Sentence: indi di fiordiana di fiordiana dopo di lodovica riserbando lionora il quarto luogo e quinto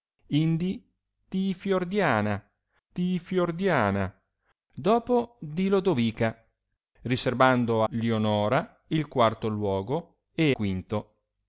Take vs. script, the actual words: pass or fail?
pass